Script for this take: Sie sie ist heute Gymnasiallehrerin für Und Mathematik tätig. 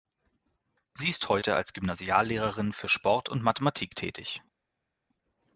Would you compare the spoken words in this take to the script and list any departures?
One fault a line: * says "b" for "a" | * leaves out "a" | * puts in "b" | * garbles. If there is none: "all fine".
* leaves out "sie"
* puts in "als"
* puts in "Sport"